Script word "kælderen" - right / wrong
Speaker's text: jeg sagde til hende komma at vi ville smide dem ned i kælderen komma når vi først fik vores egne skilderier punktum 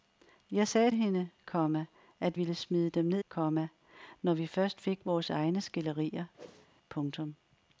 wrong